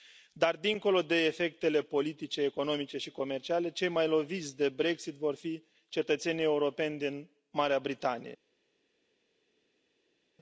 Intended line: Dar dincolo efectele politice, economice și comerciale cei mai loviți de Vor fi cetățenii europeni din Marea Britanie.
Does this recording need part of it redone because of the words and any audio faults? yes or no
yes